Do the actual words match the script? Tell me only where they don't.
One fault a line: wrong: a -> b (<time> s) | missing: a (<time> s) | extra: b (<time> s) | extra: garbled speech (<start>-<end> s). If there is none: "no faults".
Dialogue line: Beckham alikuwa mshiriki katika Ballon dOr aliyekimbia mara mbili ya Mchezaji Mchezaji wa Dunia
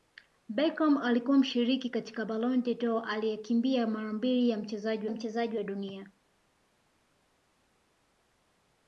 no faults